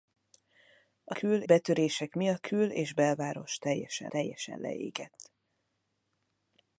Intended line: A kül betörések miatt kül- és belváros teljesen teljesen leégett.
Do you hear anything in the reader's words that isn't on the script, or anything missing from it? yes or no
no